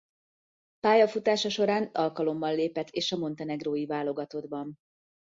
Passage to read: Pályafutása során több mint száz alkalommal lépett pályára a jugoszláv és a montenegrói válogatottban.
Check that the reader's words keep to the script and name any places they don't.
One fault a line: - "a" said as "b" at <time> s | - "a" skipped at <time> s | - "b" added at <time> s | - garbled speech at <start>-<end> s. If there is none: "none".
- "több mint száz" skipped at 1.9 s
- "pályára a jugoszláv" skipped at 2.9 s